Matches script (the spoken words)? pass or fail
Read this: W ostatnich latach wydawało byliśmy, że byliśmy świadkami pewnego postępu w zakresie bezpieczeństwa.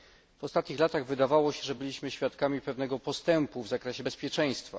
fail